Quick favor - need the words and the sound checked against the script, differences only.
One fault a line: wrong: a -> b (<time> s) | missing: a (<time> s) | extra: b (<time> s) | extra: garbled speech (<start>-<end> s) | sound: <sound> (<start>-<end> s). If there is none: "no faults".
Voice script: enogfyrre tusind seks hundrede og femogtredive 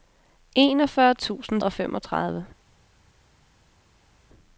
missing: seks hundrede (1.6 s)